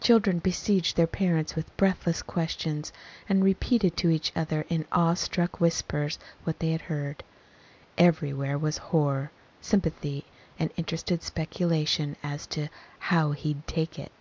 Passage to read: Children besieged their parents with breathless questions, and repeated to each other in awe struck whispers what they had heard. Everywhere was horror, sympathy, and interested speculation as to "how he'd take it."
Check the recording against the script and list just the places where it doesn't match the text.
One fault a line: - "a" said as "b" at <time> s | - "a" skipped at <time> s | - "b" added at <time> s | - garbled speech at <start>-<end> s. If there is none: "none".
none